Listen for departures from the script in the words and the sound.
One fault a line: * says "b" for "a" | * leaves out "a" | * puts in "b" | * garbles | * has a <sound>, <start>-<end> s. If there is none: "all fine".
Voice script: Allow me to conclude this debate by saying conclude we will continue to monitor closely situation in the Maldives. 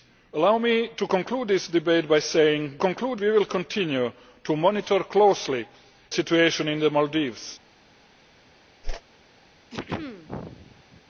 * has a whoosh, 8.8-9.0 s
* has a throat clearing, 9.7-11.0 s